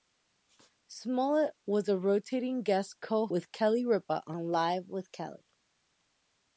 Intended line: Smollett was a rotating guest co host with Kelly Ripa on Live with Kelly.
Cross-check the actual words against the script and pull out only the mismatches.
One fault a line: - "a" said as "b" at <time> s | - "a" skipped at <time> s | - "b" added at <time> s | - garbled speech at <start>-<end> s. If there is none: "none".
- "host" skipped at 3.3 s